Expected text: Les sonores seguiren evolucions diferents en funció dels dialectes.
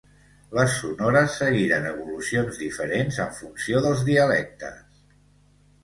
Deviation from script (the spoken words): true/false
false